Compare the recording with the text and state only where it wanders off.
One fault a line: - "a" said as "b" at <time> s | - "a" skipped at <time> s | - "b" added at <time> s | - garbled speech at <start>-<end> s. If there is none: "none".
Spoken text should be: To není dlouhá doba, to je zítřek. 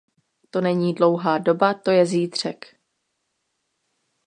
none